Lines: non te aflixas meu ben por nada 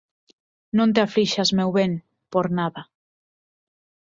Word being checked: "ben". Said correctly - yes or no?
yes